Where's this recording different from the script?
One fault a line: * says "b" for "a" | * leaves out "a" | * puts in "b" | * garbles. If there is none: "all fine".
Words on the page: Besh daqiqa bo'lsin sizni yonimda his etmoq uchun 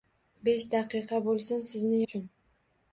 * leaves out "yonimda his etmoq"